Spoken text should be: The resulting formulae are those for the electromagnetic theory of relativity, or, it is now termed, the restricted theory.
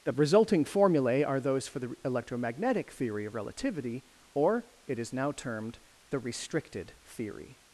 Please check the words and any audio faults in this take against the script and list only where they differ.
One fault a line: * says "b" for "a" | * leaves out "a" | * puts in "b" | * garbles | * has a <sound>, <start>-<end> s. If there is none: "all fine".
all fine